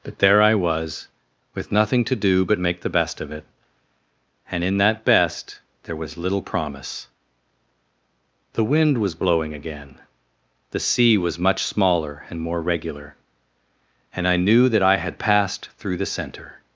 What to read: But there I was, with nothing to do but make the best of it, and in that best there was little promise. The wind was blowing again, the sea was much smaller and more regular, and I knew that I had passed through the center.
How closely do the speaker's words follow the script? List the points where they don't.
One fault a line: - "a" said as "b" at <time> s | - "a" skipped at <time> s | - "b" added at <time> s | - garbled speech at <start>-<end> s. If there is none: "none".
none